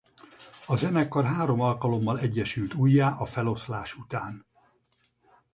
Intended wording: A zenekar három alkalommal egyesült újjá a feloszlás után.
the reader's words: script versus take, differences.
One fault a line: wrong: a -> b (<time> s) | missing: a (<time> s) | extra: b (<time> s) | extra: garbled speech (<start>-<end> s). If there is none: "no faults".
no faults